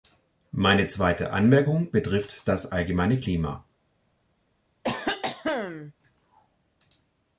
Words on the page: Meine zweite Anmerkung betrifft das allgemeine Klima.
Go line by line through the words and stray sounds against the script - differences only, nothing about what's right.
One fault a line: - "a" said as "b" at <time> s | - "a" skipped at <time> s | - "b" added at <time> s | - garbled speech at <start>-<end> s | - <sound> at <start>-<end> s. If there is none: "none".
- cough at 4.8-5.9 s